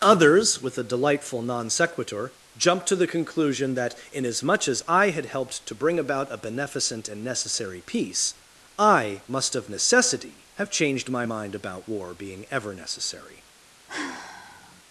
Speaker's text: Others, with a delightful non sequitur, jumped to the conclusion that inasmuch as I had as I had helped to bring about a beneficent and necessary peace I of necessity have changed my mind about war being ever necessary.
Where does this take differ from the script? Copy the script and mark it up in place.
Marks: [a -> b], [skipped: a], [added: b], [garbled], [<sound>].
Others, with a delightful non sequitur, jumped to the conclusion that inasmuch as I had [skipped: as I had] helped to bring about a beneficent and necessary peace I [added: must] of necessity have changed my mind about war being ever necessary. [sigh]